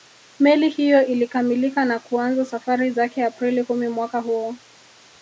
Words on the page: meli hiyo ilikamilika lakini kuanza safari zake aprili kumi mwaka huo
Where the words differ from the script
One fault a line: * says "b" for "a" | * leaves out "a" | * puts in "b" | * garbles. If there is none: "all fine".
* says "na" for "lakini"